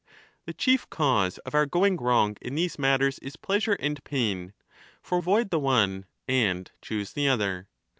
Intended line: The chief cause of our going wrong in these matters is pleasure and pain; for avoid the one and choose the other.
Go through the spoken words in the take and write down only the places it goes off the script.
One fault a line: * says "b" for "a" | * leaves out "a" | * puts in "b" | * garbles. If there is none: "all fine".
all fine